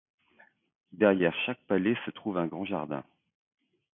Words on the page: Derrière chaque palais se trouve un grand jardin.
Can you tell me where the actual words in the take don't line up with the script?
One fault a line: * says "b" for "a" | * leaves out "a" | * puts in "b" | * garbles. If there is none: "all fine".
all fine